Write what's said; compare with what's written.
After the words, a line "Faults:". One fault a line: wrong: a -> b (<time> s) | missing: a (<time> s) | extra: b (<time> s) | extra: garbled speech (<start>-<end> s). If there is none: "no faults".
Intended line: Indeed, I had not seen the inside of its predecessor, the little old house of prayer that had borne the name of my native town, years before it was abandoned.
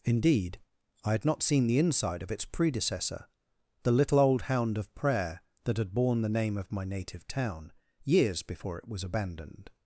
Indeed, I had not seen the inside of its predecessor, the little old hound of prayer that had borne the name of my native town, years before it was abandoned.
Faults:
wrong: house -> hound (4.4 s)